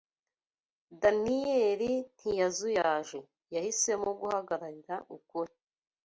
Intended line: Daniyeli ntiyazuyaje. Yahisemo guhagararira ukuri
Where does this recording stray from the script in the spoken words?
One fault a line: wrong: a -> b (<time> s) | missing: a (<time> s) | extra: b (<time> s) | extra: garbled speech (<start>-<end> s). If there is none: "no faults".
no faults